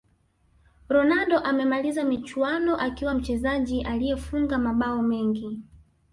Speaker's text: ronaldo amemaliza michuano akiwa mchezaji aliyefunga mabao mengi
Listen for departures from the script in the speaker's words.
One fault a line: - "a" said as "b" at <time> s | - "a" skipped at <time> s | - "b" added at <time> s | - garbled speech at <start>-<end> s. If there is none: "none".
none